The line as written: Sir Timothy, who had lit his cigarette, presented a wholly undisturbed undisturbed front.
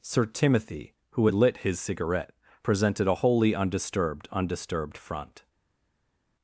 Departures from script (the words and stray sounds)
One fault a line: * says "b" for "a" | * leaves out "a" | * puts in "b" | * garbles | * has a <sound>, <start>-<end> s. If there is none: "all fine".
all fine